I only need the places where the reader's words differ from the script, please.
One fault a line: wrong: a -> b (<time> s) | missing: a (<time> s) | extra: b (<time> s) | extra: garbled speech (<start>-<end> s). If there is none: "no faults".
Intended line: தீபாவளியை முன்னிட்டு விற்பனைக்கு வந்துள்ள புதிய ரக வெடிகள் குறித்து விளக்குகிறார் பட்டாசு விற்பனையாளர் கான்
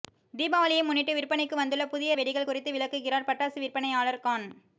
missing: ரக (2.1 s)